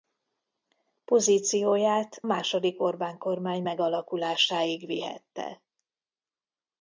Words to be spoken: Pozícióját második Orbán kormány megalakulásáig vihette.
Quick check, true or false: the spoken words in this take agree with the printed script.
true